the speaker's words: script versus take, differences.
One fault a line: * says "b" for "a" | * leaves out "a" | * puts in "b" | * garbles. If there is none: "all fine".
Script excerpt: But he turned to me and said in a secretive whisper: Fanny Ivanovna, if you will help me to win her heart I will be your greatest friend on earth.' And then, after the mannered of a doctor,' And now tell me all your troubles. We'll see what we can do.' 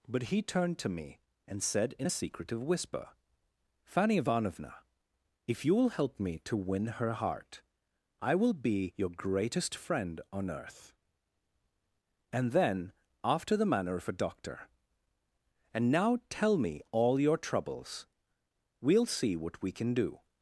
* says "manner" for "mannered"